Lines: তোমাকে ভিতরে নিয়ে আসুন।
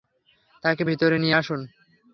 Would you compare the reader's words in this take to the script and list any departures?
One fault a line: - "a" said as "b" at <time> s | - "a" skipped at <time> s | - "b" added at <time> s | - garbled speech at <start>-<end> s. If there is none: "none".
- "তোমাকে" said as "তাকে" at 0.6 s